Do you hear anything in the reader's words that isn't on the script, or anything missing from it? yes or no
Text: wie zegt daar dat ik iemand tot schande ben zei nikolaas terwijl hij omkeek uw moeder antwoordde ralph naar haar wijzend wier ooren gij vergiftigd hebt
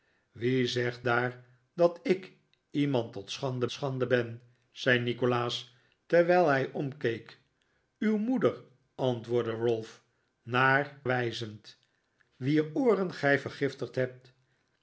yes